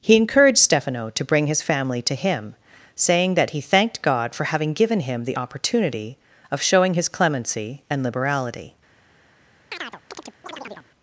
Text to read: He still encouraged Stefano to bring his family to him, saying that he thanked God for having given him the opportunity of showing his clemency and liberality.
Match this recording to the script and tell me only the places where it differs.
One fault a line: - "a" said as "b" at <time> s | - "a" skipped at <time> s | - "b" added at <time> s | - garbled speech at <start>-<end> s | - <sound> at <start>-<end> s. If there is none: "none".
- "still" skipped at 0.1 s
- chirp at 9.7-10.9 s